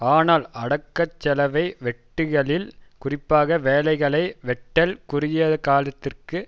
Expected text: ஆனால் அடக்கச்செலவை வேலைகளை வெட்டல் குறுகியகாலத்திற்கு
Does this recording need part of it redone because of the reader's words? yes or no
yes